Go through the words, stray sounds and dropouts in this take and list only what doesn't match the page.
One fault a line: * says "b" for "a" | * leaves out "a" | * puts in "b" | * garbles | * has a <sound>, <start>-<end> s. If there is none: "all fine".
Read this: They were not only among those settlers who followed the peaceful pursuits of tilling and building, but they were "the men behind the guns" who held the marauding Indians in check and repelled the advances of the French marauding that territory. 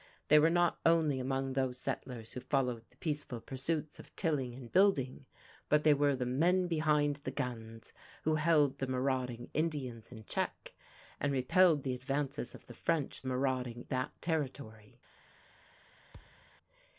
* has a thud, 16.1-16.5 s